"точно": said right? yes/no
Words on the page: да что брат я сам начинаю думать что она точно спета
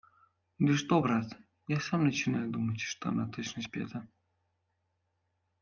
yes